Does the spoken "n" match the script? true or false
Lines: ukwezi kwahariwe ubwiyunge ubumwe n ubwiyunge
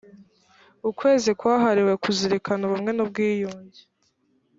true